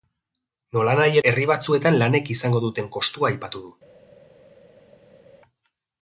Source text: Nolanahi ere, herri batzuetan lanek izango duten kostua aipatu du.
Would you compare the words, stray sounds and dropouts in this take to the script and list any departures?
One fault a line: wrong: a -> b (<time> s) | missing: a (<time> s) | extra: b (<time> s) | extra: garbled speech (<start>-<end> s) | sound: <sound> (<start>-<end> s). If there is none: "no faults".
missing: ere (1.2 s)